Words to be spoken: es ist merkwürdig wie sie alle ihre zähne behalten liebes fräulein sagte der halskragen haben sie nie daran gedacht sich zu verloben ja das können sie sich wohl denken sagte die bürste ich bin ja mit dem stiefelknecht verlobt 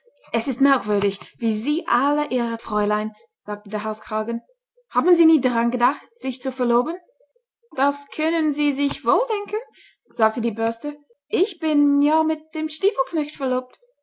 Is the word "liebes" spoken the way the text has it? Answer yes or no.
no